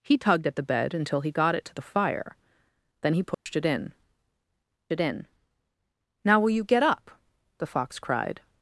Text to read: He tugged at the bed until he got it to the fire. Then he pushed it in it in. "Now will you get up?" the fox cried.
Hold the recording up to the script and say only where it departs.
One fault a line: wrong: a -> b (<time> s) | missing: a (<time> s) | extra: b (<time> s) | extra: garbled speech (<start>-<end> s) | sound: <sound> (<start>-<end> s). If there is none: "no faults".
sound: dropout (3.3-3.5 s)